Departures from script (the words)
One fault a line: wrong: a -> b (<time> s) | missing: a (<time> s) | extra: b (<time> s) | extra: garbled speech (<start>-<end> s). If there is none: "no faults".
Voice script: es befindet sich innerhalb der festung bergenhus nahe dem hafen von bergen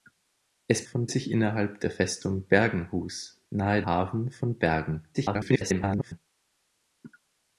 wrong: befindet -> von (0.8 s)
missing: dem (3.8 s)
extra: garbled speech (5.1-6.2 s)